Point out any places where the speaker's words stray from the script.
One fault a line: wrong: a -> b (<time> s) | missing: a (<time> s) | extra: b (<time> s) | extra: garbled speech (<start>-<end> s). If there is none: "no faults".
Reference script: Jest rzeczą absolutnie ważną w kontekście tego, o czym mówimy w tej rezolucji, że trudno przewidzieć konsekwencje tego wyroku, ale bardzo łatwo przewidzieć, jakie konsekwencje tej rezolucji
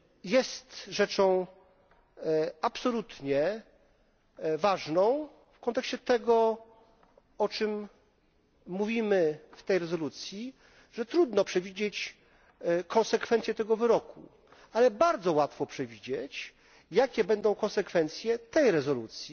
extra: będą (17.2 s)